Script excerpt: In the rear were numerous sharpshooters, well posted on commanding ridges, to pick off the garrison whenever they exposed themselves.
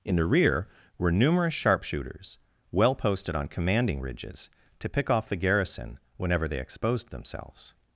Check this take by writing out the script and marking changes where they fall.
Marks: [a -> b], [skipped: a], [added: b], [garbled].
In the rear were numerous sharpshooters, well posted on commanding ridges, to pick off the garrison whenever they exposed themselves.